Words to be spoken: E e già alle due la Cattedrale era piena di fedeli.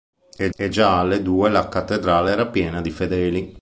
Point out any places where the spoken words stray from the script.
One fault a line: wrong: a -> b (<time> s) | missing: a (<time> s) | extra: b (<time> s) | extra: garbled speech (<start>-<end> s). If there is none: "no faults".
no faults